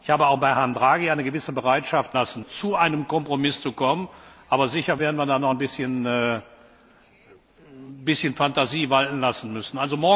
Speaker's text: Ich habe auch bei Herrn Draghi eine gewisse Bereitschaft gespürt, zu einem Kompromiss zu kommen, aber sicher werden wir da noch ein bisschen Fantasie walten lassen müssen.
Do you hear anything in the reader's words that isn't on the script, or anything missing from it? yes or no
yes